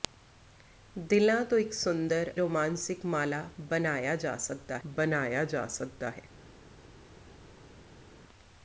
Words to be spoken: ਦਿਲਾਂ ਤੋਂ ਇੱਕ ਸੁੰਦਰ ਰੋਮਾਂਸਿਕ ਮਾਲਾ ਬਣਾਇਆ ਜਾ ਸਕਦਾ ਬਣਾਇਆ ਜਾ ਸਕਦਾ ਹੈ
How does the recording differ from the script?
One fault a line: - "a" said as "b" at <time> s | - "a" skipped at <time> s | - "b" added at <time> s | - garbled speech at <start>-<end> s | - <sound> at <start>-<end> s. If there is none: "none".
none